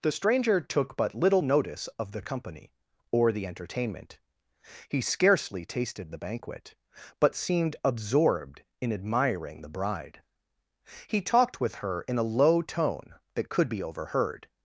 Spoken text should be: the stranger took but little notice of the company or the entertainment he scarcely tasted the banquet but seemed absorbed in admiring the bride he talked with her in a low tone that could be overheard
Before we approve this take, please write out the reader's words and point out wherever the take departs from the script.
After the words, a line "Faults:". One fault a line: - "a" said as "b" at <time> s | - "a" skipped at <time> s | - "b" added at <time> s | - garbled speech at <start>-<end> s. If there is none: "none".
the stranger took but little notice of the company or the entertainment he scarcely tasted the banquet but seemed absorbed in admiring the bride he talked with her in a low tone that could be overheard
Faults:
none